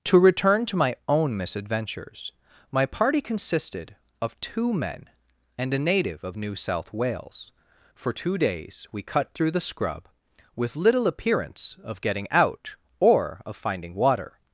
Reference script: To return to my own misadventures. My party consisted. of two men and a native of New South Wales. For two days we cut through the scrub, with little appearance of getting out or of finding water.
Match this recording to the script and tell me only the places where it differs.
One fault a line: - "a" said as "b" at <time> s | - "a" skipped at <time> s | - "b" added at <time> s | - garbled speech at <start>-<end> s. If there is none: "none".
none